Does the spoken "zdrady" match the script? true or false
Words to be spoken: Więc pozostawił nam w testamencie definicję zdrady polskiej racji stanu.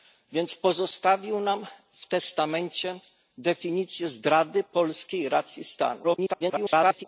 true